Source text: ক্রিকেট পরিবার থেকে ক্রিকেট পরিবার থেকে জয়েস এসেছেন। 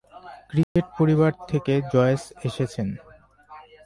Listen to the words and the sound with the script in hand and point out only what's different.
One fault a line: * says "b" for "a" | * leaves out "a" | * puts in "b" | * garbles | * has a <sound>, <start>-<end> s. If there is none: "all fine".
* has a dropout, 0.6-0.8 s
* leaves out "ক্রিকেট পরিবার থেকে"